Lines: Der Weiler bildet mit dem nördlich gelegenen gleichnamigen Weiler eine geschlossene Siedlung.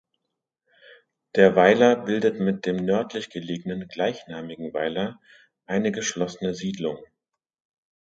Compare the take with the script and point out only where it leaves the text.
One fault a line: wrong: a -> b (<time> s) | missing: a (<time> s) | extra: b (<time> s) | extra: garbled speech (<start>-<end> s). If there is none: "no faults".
no faults